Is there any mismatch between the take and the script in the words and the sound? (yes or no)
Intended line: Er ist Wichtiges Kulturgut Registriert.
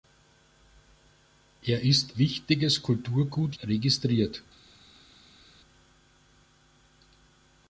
no